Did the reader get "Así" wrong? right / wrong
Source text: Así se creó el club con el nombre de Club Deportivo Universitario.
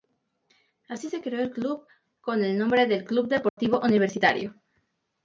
right